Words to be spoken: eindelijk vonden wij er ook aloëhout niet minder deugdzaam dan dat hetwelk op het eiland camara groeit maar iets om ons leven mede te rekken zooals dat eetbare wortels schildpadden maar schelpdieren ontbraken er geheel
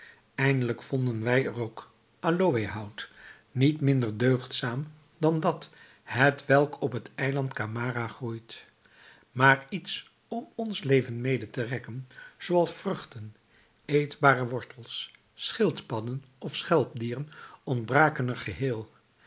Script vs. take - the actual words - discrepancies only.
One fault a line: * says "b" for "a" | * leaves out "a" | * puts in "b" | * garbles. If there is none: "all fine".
* says "vruchten" for "dat"
* says "of" for "maar"